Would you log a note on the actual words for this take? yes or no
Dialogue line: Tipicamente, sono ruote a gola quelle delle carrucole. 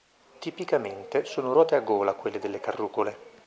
no